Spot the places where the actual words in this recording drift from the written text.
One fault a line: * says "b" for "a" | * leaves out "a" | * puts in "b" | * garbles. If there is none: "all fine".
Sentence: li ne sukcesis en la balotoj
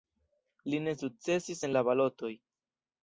all fine